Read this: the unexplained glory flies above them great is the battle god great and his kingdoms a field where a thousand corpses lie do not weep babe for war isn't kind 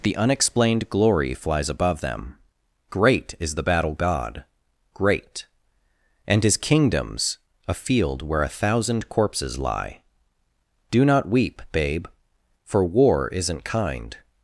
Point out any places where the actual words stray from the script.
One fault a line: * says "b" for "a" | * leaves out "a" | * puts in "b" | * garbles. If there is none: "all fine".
all fine